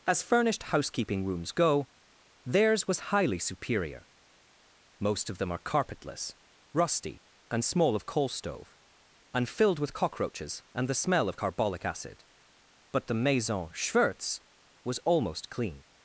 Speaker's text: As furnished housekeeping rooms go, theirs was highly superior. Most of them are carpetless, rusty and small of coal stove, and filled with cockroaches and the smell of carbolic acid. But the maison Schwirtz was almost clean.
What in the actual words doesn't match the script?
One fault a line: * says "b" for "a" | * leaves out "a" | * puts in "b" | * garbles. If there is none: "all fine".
all fine